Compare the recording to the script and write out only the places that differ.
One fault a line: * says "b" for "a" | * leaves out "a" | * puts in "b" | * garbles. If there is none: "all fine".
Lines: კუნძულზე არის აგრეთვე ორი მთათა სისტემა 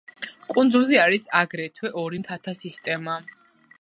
all fine